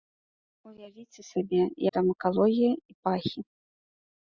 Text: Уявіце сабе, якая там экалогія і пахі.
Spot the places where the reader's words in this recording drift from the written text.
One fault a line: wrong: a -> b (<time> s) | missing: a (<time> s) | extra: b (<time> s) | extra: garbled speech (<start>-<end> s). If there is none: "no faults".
missing: якая (1.6 s)